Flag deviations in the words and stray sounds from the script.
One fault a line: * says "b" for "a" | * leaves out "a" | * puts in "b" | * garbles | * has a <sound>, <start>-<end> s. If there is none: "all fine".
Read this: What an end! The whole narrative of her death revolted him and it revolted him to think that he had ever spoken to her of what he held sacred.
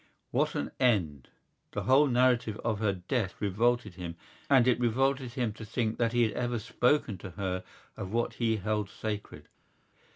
all fine